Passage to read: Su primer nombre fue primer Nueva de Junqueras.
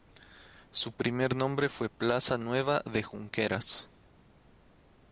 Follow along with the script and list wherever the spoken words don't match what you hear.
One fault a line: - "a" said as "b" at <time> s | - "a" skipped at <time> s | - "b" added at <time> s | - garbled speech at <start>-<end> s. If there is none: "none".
- "primer" said as "plaza" at 1.9 s